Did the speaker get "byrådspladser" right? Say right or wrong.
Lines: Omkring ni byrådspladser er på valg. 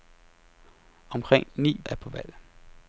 wrong